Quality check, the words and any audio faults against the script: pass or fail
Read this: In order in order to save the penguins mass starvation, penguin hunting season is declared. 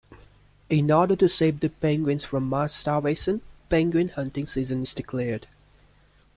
fail